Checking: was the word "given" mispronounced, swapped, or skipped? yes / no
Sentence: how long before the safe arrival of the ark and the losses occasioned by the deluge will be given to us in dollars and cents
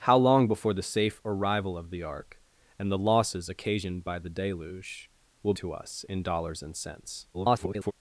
yes